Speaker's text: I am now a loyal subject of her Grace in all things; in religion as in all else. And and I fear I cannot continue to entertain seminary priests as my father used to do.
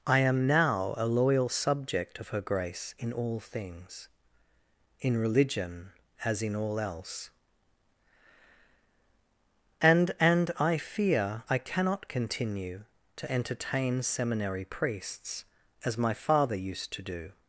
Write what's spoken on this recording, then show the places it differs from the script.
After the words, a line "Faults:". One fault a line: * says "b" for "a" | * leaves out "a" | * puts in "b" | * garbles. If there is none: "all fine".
I am now a loyal subject of her Grace in all things; in religion as in all else. And and I fear I cannot continue to entertain seminary priests as my father used to do.
Faults:
all fine